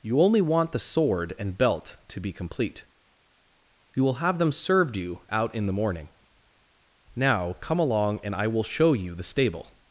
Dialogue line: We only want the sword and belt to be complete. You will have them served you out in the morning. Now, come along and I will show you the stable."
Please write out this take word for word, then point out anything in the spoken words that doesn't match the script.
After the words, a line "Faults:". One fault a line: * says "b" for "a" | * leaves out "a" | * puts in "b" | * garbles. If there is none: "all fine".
You only want the sword and belt to be complete. You will have them served you out in the morning. Now, come along and I will show you the stable."
Faults:
* says "You" for "We"